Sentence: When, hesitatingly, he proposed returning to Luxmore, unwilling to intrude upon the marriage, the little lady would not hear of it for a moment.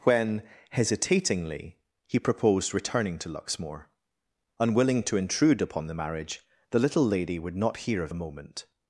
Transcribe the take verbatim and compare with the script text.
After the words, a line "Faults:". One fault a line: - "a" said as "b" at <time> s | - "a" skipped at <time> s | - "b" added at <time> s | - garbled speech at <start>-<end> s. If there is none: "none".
When, hesitatingly, he proposed returning to Luxmore, unwilling to intrude upon the marriage, the little lady would not hear of a moment.
Faults:
- "it for" skipped at 8.1 s